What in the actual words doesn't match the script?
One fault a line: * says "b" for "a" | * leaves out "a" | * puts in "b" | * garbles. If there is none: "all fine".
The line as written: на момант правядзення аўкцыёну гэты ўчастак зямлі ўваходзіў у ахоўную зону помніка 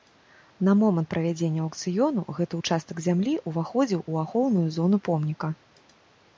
all fine